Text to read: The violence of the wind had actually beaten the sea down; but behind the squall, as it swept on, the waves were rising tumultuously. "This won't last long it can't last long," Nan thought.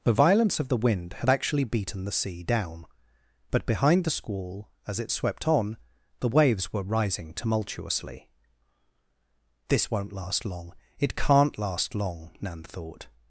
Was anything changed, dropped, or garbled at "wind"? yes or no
no